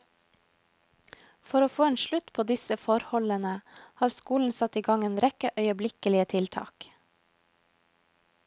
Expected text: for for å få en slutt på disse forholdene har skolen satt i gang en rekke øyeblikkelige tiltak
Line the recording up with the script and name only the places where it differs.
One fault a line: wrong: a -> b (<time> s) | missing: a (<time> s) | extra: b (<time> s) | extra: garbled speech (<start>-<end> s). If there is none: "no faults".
missing: for (1.6 s)